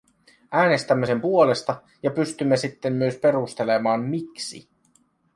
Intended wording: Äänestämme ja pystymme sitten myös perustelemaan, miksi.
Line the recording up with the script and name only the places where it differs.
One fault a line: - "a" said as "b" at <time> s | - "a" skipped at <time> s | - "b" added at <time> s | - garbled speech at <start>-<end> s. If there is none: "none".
- "sen puolesta" added at 1.1 s